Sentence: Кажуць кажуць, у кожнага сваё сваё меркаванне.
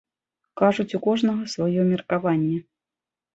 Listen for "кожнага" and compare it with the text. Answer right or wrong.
right